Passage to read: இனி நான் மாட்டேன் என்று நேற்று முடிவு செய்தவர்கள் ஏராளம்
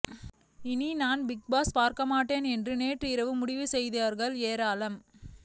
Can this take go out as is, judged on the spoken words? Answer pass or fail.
fail